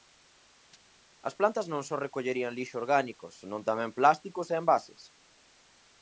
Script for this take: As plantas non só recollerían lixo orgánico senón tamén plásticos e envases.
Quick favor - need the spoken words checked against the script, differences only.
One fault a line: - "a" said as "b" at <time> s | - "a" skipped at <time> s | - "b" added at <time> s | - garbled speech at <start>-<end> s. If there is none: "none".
none